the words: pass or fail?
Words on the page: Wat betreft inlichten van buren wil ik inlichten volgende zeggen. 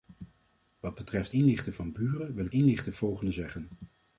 pass